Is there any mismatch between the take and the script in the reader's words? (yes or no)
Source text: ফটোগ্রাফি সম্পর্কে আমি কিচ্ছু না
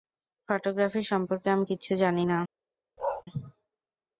yes